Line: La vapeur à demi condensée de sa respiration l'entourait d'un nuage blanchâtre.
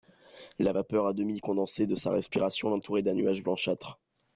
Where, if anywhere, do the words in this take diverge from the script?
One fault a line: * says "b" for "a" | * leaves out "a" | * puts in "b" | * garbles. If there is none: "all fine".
all fine